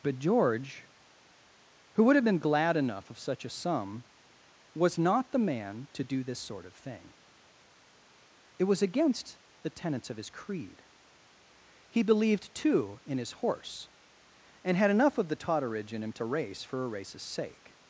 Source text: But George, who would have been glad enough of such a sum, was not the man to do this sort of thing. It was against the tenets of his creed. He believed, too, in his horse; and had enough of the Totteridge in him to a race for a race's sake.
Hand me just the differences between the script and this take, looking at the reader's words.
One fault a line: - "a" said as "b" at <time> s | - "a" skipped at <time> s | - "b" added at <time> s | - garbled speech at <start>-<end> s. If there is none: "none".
none